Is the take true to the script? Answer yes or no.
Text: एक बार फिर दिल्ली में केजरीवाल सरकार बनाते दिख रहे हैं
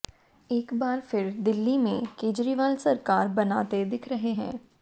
yes